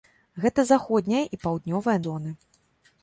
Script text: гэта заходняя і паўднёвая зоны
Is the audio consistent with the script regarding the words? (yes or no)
yes